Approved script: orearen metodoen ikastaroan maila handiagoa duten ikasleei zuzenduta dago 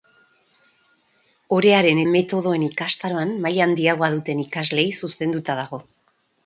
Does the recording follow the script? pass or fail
pass